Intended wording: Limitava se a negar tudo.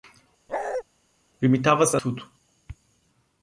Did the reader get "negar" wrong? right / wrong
wrong